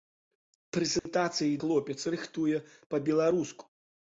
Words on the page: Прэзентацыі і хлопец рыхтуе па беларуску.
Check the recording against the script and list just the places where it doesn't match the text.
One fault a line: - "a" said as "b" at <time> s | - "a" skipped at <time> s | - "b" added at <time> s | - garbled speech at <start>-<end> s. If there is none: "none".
none